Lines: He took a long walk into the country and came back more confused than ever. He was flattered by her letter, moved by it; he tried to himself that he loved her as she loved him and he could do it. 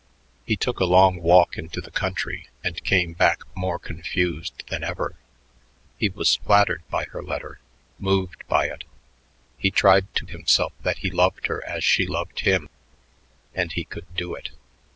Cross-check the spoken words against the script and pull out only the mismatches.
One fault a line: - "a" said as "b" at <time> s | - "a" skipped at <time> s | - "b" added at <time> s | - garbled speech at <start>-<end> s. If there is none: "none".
none